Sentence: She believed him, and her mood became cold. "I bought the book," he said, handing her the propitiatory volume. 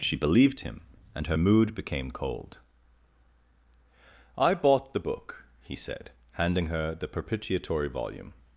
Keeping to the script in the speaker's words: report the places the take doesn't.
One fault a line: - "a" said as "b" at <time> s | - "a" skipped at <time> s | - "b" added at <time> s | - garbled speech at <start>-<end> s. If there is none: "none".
none